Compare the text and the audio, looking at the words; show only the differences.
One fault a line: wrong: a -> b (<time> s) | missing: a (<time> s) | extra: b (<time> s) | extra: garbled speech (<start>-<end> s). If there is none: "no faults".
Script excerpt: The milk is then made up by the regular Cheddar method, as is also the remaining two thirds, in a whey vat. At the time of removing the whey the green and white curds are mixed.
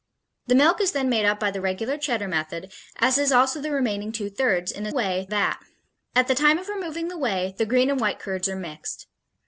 no faults